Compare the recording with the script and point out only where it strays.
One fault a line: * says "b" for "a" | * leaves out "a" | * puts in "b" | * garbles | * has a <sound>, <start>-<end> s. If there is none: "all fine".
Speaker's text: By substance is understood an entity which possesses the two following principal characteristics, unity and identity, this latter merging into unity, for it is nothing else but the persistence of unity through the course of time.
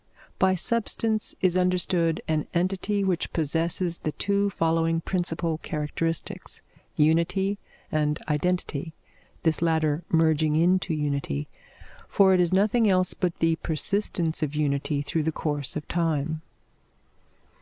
all fine